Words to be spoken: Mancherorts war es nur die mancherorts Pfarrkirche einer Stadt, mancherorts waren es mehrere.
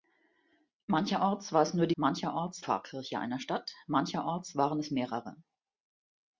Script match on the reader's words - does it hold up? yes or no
yes